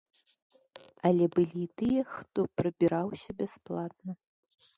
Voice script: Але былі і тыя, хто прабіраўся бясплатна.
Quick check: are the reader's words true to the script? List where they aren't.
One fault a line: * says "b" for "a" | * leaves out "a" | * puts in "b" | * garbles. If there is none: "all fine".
all fine